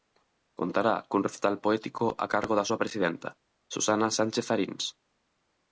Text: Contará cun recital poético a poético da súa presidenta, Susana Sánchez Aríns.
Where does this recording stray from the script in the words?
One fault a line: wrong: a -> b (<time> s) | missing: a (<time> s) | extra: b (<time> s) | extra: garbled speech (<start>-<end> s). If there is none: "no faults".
wrong: poético -> cargo (2.3 s)